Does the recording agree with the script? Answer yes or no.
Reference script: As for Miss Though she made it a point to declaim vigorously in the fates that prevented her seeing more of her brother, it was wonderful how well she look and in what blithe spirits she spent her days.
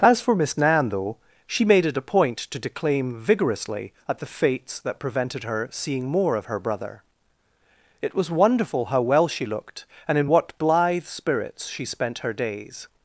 no